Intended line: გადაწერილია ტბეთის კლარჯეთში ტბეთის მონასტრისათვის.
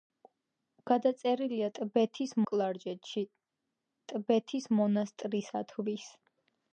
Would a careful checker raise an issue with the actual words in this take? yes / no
no